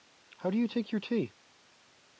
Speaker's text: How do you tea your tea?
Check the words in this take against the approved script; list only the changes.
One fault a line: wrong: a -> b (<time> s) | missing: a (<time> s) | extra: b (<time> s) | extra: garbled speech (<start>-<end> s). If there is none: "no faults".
wrong: tea -> take (0.7 s)